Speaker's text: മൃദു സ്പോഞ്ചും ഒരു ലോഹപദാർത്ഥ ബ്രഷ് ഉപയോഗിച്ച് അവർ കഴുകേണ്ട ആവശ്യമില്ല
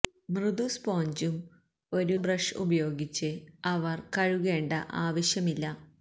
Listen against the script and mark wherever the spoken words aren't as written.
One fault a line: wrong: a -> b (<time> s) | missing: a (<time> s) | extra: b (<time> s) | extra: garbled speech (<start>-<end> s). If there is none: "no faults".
missing: ലോഹപദാർത്ഥ (2.1 s)